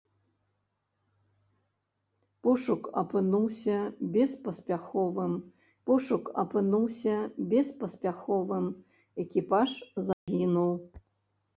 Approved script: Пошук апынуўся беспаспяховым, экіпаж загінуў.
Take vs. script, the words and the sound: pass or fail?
fail